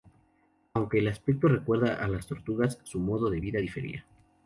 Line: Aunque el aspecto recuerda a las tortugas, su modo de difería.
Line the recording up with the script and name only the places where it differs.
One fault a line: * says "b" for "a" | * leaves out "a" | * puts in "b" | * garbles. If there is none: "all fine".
* puts in "vida"